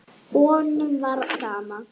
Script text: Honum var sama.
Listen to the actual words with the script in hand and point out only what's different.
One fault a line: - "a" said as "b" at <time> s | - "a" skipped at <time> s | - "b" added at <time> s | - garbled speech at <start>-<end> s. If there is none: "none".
none